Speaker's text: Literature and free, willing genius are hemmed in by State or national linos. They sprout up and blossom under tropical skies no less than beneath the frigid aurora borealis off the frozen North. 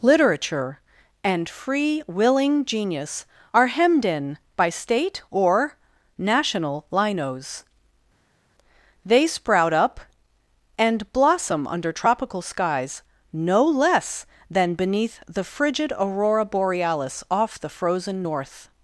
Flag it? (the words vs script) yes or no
no